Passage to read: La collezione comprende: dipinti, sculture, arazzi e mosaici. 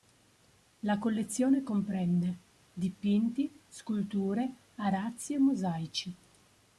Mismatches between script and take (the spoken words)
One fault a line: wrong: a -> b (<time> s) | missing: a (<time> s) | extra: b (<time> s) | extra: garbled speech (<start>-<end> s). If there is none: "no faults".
no faults